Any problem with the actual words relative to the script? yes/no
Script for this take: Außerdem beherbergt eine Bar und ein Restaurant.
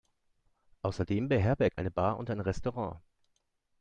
no